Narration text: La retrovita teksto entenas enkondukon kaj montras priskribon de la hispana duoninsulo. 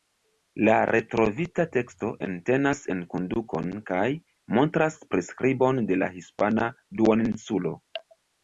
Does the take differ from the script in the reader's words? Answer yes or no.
no